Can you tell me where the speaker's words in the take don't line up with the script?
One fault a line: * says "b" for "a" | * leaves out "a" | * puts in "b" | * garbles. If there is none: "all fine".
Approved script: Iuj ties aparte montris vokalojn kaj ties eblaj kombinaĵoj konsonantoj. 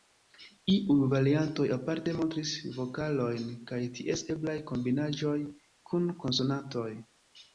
* says "variantoj" for "ties"
* puts in "kun"